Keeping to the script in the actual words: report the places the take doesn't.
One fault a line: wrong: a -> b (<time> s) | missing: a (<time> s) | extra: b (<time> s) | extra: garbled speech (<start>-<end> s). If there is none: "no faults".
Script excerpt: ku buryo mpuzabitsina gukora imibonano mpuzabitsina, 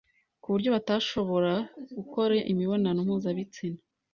wrong: mpuzabitsina -> batashobora (0.8 s)